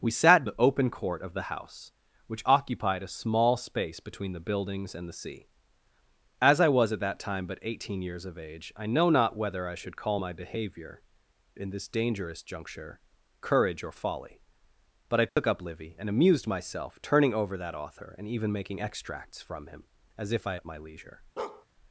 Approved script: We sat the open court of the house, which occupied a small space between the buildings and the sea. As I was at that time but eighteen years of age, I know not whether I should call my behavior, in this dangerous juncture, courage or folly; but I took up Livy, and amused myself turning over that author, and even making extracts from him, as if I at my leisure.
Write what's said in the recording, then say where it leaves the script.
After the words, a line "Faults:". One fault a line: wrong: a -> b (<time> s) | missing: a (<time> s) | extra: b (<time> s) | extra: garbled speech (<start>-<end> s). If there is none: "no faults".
We sat the open court of the house, which occupied a small space between the buildings and the sea. As I was at that time but eighteen years of age, I know not whether I should call my behavior, in this dangerous juncture, courage or folly; but I took up Livy, and amused myself turning over that author, and even making extracts from him, as if I at my leisure.
Faults:
no faults